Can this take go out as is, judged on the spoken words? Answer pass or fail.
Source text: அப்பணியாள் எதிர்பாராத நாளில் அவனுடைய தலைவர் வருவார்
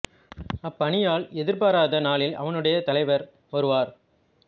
pass